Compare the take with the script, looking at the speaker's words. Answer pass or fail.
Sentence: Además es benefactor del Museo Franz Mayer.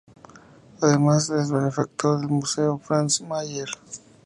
pass